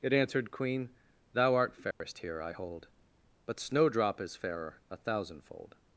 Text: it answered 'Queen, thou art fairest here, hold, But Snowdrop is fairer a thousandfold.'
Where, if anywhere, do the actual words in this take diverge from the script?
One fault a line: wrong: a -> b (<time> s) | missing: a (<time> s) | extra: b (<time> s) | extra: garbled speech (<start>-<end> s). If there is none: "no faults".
extra: I (2.4 s)